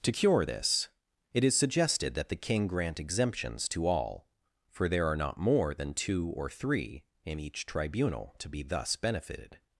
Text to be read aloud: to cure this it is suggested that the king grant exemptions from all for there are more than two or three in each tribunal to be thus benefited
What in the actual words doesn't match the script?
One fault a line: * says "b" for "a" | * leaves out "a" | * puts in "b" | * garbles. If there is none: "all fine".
* says "to" for "from"
* puts in "not"